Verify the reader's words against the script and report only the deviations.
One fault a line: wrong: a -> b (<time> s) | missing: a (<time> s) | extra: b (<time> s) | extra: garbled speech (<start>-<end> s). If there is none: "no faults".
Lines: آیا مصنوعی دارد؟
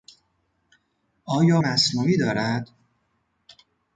no faults